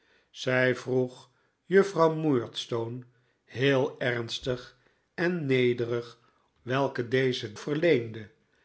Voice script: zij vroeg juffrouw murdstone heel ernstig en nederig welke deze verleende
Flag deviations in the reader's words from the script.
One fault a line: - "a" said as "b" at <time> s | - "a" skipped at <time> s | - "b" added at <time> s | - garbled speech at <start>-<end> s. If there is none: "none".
none